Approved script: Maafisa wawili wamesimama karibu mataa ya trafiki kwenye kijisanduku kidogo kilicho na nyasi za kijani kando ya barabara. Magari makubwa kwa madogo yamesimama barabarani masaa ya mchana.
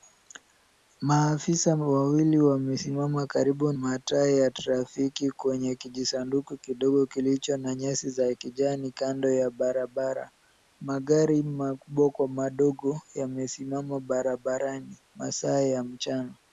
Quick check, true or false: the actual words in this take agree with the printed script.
true